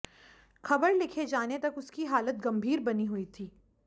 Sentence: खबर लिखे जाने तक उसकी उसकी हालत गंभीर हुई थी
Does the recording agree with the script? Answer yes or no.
no